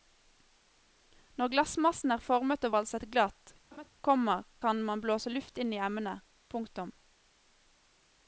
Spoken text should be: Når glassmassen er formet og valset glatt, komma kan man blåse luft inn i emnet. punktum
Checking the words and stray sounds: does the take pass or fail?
fail